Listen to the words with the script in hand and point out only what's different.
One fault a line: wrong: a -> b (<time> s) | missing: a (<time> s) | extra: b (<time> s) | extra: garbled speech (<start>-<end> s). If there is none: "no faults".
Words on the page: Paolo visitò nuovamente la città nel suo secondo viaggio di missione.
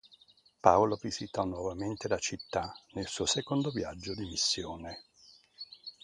no faults